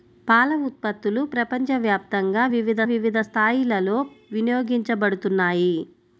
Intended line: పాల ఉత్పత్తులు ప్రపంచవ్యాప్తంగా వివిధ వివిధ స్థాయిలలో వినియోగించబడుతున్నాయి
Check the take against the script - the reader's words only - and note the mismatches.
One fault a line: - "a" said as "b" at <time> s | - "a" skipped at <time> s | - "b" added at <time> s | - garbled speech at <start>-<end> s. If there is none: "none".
none